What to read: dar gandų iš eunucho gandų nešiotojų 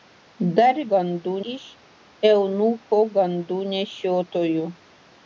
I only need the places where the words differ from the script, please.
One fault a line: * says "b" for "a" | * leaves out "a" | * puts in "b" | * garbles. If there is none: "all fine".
all fine